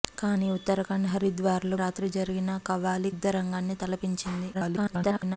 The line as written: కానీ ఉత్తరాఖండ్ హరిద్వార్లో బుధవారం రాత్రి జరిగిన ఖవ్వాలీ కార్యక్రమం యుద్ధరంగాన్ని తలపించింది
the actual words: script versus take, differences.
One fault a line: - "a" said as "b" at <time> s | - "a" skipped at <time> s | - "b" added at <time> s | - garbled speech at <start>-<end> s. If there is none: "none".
- "బుధవారం" skipped at 1.8 s
- "కార్యక్రమం" skipped at 3.1 s
- garbled speech at 4.5-5.4 s